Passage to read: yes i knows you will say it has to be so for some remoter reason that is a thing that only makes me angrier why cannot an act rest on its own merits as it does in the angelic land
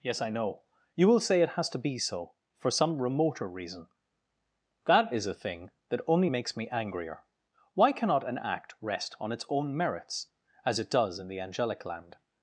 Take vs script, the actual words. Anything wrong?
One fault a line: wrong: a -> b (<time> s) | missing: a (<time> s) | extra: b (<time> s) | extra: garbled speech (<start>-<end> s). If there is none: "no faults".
wrong: knows -> know (0.3 s)